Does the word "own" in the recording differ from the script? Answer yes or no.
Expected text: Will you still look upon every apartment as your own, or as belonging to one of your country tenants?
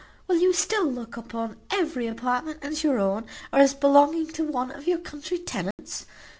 no